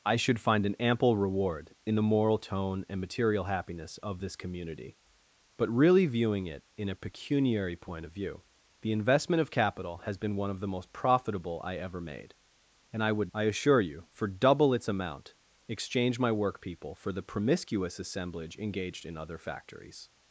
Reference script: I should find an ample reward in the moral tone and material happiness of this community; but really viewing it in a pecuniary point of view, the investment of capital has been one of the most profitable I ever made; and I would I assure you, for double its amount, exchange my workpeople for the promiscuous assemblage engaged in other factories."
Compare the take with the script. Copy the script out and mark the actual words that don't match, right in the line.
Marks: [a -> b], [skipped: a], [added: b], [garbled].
I should find an ample reward in the moral tone and material happiness of this community; but really viewing it in a pecuniary point of view, the investment of capital has been one of the most profitable I ever made; and I would I assure you, for double its amount, exchange my workpeople for the promiscuous assemblage engaged in other factories."